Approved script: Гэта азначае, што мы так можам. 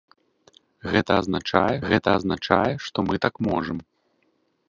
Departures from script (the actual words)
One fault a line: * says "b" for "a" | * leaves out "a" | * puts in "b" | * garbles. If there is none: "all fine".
* puts in "гэта азначае"